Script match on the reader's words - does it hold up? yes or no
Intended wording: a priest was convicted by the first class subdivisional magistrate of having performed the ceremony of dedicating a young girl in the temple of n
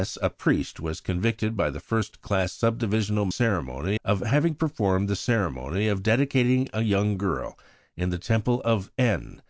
no